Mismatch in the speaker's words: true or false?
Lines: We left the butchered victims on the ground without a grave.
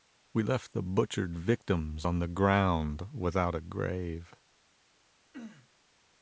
false